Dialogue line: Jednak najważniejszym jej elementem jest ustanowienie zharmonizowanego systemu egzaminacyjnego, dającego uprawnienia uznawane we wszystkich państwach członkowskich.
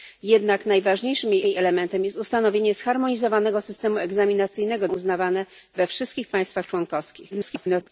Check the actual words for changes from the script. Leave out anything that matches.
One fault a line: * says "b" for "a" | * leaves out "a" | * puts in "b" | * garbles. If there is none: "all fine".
* puts in "jej"
* leaves out "dającego uprawnienia"
* garbles